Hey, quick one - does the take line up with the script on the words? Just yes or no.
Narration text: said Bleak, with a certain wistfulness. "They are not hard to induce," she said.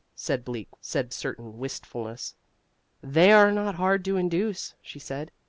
no